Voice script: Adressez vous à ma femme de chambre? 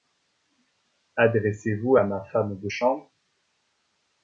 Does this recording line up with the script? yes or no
yes